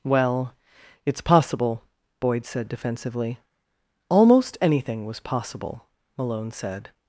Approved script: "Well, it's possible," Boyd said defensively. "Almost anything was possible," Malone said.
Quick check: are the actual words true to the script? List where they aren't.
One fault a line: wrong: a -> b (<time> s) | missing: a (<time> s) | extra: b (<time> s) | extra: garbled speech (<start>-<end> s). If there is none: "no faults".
no faults